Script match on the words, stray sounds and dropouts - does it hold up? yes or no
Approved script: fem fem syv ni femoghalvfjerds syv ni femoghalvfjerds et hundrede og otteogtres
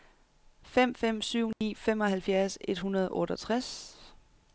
no